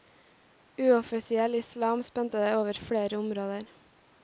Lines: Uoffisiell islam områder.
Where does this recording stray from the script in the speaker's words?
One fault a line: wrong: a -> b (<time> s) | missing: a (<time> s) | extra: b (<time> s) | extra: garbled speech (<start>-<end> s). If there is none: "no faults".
extra: spente over flere (2.0 s)